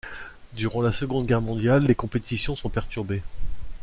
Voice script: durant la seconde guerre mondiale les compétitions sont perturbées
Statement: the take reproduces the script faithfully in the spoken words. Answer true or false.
true